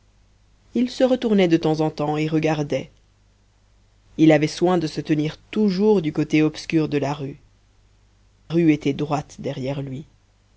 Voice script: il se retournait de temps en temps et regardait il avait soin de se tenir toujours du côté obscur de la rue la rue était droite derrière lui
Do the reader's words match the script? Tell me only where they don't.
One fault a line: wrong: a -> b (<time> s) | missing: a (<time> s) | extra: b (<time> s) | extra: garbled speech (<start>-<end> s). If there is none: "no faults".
missing: la (7.4 s)